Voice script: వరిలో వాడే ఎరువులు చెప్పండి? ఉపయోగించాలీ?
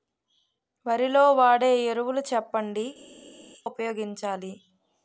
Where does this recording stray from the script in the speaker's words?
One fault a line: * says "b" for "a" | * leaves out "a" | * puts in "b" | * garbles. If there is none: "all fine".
all fine